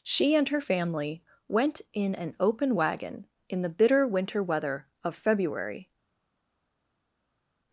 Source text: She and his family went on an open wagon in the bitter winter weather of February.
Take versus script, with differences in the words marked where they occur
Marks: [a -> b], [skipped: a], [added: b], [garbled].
She and [his -> her] family went [on -> in] an open wagon in the bitter winter weather of February.